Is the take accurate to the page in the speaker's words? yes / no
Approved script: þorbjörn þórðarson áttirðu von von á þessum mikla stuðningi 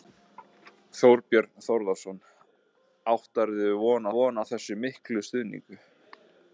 yes